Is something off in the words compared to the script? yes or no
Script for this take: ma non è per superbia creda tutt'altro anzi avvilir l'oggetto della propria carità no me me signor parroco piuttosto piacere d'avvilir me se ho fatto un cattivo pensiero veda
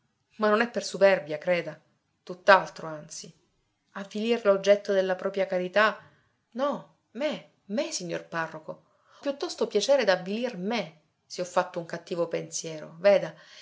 no